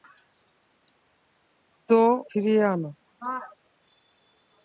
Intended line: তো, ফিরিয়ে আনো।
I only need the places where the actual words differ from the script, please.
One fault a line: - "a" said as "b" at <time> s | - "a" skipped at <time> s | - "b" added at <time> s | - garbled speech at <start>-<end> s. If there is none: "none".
none